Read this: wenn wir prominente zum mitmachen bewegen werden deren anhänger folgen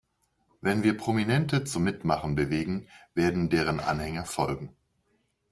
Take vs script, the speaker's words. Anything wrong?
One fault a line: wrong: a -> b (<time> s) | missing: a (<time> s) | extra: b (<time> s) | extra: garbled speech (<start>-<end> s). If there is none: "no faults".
no faults